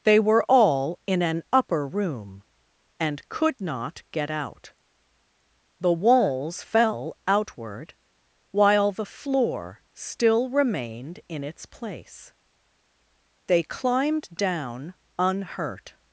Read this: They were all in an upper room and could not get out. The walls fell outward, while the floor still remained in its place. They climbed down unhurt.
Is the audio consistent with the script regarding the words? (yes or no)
yes